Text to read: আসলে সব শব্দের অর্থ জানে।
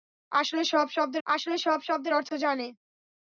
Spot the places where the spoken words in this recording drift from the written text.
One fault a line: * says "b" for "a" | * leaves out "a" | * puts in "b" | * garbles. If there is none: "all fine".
* puts in "আসলে সব শব্দের"